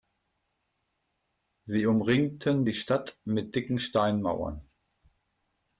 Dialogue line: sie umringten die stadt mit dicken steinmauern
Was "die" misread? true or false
false